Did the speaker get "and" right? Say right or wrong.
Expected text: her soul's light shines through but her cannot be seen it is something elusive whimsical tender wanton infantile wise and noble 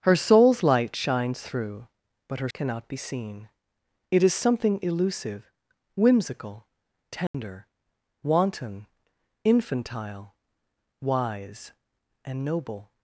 right